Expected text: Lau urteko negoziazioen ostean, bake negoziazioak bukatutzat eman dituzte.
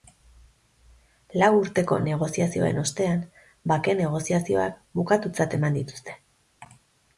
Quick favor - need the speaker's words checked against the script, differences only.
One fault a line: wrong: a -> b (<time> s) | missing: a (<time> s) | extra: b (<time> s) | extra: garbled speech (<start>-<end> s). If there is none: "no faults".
no faults